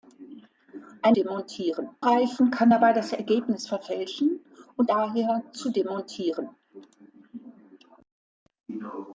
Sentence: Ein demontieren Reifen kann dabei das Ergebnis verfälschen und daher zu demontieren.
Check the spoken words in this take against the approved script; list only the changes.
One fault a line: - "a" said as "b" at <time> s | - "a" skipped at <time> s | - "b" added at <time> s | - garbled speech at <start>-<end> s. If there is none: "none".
none